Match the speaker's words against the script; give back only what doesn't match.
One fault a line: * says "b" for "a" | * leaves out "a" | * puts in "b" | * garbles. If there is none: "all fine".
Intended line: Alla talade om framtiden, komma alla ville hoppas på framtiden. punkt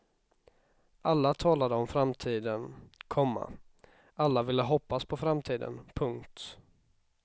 all fine